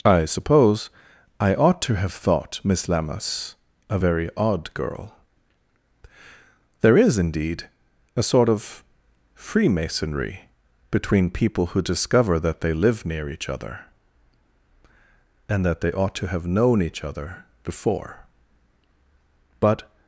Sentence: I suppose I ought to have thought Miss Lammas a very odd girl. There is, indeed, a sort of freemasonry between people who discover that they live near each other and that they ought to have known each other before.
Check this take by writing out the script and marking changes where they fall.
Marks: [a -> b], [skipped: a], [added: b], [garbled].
I suppose I ought to have thought Miss Lammas a very odd girl. There is, indeed, a sort of freemasonry between people who discover that they live near each other and that they ought to have known each other before. [added: But]